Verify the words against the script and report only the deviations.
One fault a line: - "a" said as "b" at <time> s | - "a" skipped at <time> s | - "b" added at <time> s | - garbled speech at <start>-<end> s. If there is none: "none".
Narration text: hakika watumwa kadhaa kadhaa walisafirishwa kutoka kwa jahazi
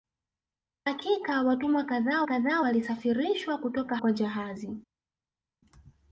none